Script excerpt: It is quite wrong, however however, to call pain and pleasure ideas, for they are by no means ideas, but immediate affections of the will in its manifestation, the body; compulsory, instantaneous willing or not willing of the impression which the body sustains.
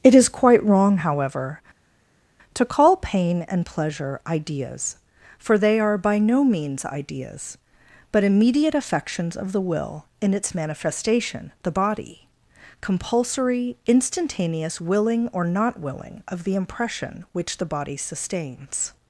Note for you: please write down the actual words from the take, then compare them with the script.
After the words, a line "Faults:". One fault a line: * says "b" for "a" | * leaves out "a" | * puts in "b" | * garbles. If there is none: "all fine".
It is quite wrong, however, to call pain and pleasure ideas, for they are by no means ideas, but immediate affections of the will in its manifestation, the body; compulsory, instantaneous willing or not willing of the impression which the body sustains.
Faults:
* leaves out "however"